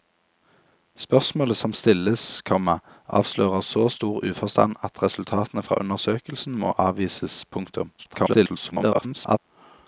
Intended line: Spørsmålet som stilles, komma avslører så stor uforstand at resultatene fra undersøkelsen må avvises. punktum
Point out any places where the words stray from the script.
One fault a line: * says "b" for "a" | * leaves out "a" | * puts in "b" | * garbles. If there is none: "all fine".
* garbles